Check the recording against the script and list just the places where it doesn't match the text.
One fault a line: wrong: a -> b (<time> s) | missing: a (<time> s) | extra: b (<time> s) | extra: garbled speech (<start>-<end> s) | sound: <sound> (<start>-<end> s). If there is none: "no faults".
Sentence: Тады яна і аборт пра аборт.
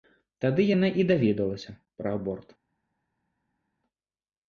wrong: аборт -> даведалася (1.1 s)